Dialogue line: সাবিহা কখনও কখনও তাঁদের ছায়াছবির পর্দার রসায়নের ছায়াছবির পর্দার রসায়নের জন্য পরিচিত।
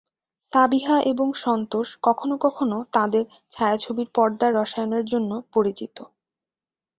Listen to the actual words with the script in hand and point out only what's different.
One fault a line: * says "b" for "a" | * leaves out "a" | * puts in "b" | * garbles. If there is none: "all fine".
* puts in "এবং সন্তোষ"
* leaves out "ছায়াছবির পর্দার রসায়নের"